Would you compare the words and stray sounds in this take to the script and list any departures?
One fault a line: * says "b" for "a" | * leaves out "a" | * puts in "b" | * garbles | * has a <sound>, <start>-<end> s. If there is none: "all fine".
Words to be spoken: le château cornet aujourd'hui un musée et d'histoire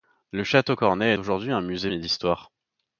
all fine